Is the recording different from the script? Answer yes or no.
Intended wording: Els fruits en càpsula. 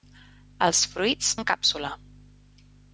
no